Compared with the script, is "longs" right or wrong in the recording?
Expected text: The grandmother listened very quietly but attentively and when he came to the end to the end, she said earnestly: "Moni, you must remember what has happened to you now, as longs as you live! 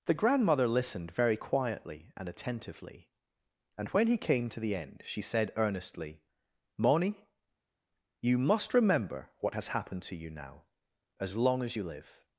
wrong